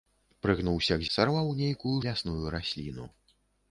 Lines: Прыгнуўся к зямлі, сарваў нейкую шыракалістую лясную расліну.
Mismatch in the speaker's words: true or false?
true